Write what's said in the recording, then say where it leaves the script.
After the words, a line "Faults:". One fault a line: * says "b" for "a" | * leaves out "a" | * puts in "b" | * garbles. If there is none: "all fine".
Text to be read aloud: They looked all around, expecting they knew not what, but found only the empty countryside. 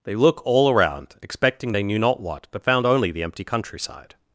They look all around, expecting they knew not what, but found only the empty countryside.
Faults:
* says "look" for "looked"